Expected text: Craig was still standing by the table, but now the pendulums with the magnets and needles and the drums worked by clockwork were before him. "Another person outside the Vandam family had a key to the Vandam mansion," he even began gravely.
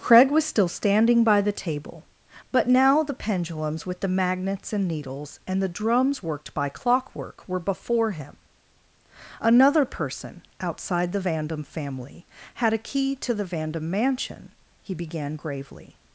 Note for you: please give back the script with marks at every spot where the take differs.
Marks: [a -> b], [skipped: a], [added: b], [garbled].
Craig was still standing by the table, but now the pendulums with the magnets and needles and the drums worked by clockwork were before him. "Another person outside the Vandam family had a key to the Vandam mansion," he [skipped: even] began gravely.